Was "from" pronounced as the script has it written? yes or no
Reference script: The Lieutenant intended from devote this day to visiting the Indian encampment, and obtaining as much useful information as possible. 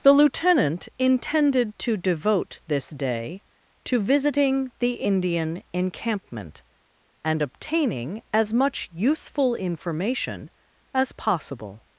no